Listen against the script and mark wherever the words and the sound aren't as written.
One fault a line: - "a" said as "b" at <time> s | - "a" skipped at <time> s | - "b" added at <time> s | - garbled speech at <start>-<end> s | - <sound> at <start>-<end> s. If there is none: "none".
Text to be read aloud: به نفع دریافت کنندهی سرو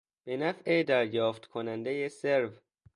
none